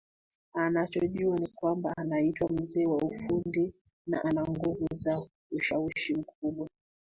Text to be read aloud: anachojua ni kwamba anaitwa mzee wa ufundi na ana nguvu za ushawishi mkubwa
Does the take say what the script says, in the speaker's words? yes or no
yes